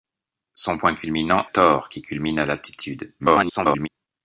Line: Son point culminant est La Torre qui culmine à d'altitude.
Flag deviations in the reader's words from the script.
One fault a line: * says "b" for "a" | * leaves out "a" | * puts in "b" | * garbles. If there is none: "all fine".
* leaves out "est La"
* garbles